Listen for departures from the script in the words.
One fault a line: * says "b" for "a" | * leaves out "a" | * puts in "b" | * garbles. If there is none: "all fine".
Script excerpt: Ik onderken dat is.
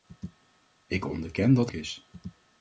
all fine